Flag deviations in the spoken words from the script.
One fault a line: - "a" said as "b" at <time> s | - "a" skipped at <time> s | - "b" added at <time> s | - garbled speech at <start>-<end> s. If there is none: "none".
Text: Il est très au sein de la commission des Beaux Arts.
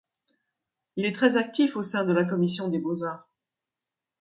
- "actif" added at 1.3 s